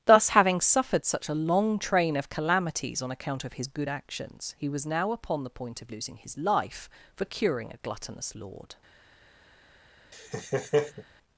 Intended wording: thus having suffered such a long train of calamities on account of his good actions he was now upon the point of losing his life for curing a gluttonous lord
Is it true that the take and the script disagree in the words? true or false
false